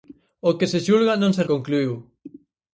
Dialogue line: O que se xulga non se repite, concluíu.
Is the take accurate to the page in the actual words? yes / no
no